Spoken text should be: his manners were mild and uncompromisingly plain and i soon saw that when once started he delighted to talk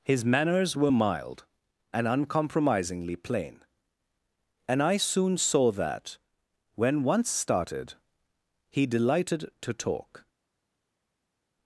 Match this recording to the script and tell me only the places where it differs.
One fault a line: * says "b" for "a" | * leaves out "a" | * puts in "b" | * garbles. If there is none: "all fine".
all fine